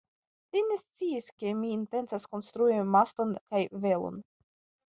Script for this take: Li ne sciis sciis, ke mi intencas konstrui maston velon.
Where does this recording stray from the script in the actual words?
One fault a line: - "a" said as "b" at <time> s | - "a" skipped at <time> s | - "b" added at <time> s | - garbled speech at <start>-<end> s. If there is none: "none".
- "sciis" skipped at 1.3 s
- "kaj" added at 3.5 s